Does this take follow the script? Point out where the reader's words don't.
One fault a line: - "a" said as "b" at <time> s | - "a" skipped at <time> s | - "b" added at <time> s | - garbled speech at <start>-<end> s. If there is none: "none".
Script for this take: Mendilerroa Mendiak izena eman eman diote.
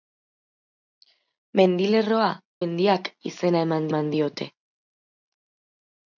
none